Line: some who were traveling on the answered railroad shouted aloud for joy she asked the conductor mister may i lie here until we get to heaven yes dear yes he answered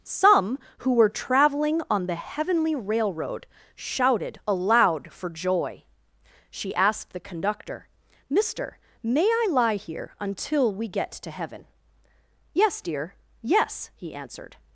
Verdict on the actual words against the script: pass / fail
fail